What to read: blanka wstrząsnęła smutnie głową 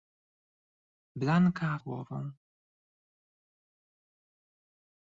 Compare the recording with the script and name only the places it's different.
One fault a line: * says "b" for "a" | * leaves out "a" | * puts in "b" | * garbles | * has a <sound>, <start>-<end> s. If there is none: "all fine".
* leaves out "wstrząsnęła smutnie"